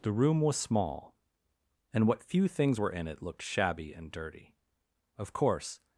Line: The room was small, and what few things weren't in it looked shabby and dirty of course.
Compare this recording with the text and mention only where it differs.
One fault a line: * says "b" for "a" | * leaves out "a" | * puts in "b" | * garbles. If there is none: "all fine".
* says "were" for "weren't"